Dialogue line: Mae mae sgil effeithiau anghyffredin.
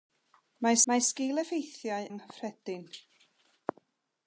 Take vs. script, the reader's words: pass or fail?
pass